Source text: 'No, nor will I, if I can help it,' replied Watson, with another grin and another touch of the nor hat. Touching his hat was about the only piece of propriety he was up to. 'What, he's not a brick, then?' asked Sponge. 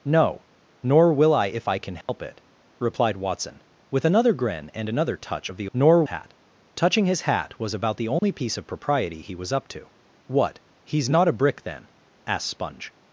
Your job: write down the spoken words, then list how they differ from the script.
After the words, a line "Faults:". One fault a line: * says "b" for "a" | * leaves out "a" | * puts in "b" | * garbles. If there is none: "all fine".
'No, nor will I, if I can help it,' replied Watson, with another grin and another touch of the nor hat. Touching his hat was about the only piece of propriety he was up to. 'What, he's not a brick, then?' asked Sponge.
Faults:
all fine